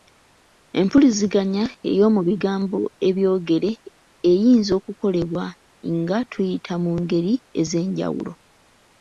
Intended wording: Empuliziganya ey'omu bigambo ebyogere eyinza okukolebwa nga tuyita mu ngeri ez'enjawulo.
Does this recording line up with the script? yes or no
yes